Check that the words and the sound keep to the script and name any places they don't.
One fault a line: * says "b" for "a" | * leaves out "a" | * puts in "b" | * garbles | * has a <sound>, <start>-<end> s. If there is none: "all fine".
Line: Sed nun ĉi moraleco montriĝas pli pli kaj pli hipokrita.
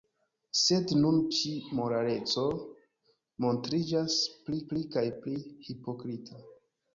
all fine